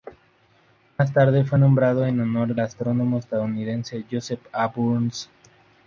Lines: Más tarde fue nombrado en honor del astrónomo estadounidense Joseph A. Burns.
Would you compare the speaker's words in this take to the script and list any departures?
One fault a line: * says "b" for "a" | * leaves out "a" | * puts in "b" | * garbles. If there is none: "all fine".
* leaves out "del"